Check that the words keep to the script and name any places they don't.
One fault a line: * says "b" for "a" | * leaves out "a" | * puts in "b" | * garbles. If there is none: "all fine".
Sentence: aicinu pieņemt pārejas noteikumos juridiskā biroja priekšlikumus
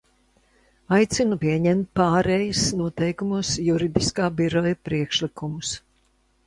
all fine